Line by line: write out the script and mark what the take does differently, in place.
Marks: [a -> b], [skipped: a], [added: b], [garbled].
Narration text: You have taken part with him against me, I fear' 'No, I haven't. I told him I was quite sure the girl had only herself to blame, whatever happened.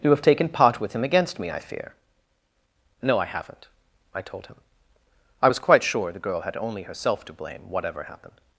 You have taken part with him against me, I fear' 'No, I haven't. I told him I was quite sure the girl had only herself to blame, whatever happened.